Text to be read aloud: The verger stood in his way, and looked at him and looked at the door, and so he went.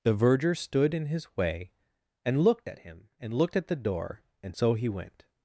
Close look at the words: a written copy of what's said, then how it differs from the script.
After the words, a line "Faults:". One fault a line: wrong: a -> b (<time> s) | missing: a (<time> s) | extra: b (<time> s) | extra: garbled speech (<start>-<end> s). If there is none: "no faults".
The verger stood in his way, and looked at him and looked at the door, and so he went.
Faults:
no faults